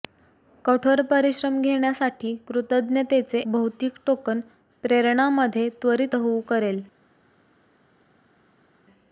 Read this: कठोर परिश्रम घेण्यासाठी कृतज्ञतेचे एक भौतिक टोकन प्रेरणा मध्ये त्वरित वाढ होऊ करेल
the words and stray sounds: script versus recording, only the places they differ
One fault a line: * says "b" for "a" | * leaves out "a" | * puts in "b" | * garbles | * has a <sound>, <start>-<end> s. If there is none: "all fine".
* leaves out "एक"
* leaves out "वाढ"